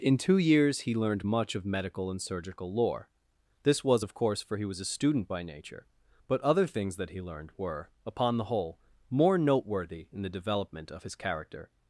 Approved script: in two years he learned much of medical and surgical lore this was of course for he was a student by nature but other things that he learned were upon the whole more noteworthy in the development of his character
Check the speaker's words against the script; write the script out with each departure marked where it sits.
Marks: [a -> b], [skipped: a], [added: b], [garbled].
in two years he learned much of medical and surgical lore this was of course for he was a student by nature but other things that he learned were upon the whole more noteworthy in the development of his character